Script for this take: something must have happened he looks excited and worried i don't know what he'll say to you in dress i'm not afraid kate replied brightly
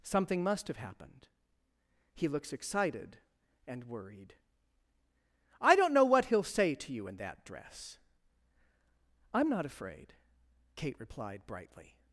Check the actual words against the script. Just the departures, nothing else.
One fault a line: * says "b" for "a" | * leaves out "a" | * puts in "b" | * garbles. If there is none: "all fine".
* puts in "that"